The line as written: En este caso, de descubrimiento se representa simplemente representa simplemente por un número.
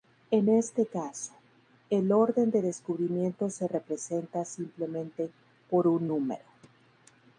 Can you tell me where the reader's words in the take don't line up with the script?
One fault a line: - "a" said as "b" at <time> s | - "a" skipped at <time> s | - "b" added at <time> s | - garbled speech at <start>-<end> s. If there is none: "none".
- "el orden" added at 1.9 s
- "representa simplemente" skipped at 5.3 s